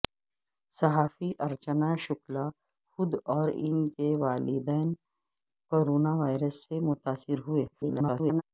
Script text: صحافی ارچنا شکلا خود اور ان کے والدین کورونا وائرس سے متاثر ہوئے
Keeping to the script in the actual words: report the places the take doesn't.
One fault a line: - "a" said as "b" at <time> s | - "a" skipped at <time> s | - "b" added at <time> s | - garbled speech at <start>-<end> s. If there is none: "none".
- garbled speech at 7.7-8.4 s